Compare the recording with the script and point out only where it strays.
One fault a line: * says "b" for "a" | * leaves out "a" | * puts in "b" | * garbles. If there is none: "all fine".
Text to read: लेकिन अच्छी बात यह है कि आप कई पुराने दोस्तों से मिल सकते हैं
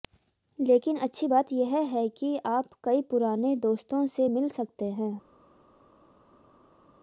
all fine